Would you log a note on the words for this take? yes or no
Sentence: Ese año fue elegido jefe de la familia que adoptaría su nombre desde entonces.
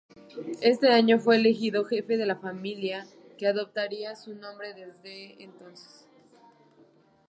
no